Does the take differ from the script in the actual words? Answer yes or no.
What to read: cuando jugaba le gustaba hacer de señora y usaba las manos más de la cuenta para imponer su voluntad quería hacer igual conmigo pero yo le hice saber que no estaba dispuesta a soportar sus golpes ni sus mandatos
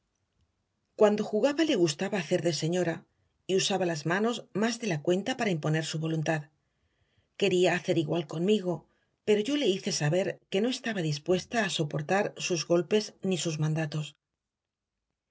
no